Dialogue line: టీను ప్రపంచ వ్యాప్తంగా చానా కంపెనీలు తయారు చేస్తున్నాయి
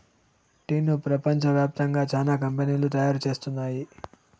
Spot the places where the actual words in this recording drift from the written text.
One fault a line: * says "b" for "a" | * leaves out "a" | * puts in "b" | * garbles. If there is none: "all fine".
all fine